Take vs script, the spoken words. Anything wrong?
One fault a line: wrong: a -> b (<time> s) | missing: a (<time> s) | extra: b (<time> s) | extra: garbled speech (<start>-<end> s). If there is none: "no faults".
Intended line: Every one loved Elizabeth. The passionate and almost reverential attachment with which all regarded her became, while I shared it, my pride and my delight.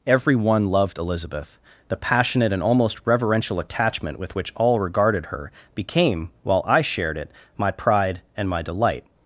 no faults